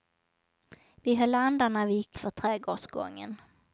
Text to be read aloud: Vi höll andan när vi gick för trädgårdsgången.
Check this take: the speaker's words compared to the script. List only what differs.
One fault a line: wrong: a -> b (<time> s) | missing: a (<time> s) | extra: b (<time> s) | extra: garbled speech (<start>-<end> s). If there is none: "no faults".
no faults